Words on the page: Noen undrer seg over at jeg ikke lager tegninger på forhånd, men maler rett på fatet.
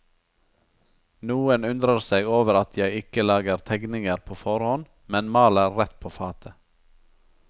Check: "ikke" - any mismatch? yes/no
no